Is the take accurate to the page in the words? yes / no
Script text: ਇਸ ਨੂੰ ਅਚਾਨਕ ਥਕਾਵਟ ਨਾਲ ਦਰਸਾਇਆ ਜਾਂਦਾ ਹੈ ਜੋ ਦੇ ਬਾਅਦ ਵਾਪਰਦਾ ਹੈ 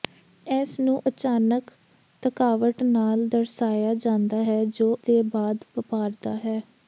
yes